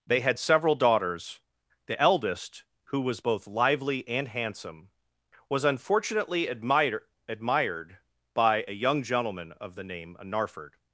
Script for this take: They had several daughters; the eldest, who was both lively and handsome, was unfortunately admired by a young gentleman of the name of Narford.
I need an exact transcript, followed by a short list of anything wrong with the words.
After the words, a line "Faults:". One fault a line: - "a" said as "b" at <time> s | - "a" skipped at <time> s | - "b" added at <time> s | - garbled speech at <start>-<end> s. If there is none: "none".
They had several daughters; the eldest, who was both lively and handsome, was unfortunately admired admired by a young gentleman of the name of Narford.
Faults:
- "admired" added at 7.3 s